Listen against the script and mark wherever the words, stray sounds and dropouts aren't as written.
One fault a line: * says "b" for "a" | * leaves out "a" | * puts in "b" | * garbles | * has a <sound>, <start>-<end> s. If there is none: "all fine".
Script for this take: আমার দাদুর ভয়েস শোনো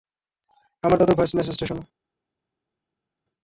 * puts in "মেসেজটা"